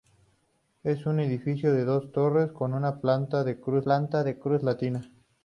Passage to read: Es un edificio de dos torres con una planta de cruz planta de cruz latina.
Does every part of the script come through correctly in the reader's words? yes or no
yes